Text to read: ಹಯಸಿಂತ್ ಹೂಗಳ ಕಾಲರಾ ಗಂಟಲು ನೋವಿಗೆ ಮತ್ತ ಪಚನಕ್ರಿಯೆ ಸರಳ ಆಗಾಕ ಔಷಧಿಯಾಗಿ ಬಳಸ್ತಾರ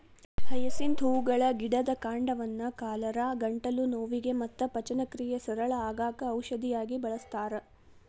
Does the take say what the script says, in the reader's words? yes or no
no